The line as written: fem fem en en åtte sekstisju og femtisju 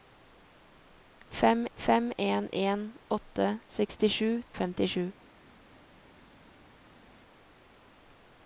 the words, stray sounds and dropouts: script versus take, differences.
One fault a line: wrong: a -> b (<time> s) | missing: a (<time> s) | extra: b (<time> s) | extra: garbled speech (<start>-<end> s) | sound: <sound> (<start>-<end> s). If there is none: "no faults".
no faults